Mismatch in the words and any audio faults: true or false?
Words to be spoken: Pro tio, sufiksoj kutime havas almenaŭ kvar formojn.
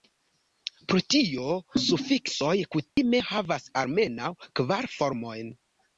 true